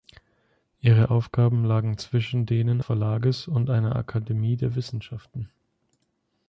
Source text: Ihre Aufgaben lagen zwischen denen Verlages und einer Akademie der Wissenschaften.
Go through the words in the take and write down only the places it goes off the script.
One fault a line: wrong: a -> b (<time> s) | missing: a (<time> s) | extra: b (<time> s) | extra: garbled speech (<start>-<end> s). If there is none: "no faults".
no faults